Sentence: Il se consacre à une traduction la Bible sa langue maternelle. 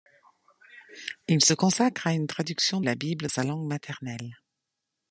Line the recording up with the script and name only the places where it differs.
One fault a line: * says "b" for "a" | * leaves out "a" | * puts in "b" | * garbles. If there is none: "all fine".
all fine